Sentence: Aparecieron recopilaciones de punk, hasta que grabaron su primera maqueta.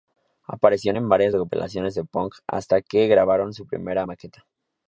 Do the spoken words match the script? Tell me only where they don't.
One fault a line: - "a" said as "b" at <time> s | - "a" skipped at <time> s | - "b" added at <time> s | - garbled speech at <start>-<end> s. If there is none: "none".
- "en varias" added at 1.0 s